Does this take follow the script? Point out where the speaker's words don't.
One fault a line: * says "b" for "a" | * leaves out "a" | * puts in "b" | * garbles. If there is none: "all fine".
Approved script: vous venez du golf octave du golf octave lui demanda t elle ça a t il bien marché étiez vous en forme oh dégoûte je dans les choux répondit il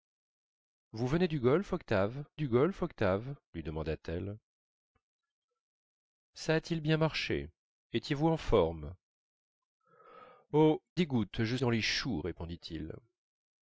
all fine